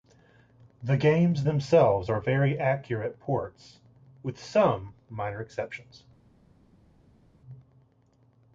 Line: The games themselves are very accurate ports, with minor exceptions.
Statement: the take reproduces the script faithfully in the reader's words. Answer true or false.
false